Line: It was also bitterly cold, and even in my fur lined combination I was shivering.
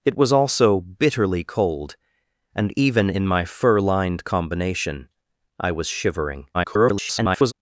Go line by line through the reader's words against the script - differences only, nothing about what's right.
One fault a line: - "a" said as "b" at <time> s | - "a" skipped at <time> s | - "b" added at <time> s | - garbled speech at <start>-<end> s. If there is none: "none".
- garbled speech at 6.5-7.5 s